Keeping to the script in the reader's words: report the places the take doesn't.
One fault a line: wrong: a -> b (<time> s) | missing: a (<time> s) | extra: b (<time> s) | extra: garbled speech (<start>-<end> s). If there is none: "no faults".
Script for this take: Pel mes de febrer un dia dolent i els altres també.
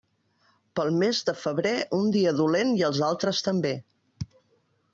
no faults